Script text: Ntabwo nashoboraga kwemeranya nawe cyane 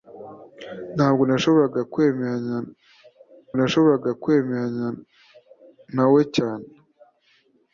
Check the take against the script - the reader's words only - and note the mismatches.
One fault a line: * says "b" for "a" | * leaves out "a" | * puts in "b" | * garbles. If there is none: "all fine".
* puts in "nashoboraga kwemeranya"